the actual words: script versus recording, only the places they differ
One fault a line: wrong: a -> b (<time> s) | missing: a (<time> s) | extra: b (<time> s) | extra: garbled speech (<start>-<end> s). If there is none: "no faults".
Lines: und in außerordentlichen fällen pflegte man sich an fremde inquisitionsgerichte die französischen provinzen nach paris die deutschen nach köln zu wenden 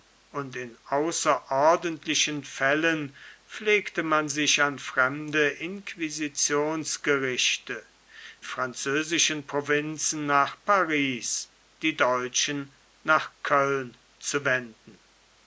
missing: die (7.8 s)